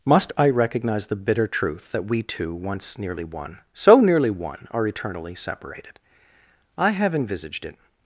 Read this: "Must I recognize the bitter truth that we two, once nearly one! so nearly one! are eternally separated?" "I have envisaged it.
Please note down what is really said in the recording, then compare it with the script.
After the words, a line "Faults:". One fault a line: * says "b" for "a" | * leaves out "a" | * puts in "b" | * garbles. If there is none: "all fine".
"Must I recognize the bitter truth that we two, once nearly one! so nearly one! are eternally separated?" "I have envisaged it.
Faults:
all fine